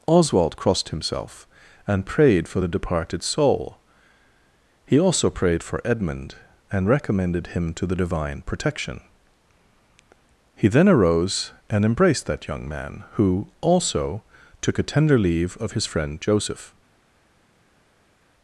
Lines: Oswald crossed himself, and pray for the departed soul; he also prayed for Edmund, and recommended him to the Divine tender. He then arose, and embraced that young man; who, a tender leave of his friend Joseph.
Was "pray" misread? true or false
true